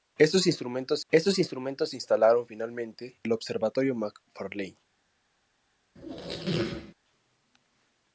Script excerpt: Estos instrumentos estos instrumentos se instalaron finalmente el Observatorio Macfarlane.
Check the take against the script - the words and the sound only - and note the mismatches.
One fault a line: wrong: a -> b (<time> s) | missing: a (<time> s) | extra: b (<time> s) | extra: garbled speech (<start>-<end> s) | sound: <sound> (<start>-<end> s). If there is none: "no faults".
sound: squeak (5.9-6.9 s)